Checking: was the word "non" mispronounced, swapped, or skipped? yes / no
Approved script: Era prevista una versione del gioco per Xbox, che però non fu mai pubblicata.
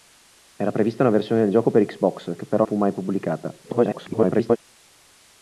yes